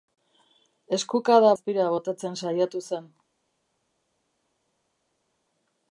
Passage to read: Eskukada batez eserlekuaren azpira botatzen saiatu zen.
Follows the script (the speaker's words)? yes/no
no